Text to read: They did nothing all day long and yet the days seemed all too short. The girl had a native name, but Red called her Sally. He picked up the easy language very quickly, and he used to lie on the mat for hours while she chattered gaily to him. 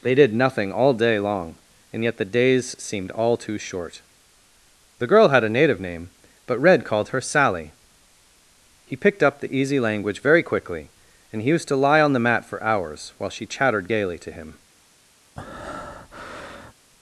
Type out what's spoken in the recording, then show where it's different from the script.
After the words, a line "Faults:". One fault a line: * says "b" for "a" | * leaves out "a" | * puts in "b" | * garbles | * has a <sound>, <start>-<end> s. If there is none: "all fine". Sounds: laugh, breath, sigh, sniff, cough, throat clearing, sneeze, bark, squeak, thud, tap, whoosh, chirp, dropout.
They did nothing all day long and yet the days seemed all too short. The girl had a native name, but Red called her Sally. He picked up the easy language very quickly, and he used to lie on the mat for hours while she chattered gaily to him.
Faults:
* has a breath, 15.4-16.7 s